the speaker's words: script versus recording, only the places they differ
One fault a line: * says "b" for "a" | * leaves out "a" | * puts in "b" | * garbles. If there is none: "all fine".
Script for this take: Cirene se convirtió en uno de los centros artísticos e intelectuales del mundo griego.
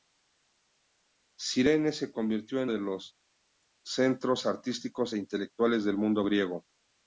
* leaves out "uno"